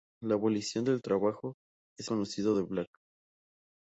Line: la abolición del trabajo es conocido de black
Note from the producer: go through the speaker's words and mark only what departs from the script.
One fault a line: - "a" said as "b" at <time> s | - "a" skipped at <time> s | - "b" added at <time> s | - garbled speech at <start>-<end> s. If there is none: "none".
none